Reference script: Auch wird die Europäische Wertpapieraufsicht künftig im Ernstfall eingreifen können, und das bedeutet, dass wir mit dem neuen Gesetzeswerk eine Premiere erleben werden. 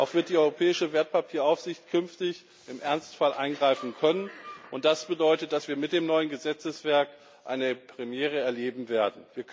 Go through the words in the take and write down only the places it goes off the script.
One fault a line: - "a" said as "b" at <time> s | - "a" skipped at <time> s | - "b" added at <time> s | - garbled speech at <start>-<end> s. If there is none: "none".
none